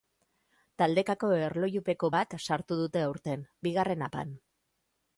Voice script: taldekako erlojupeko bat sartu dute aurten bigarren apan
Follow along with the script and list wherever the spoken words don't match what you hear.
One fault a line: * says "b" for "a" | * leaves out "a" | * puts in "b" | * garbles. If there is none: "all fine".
all fine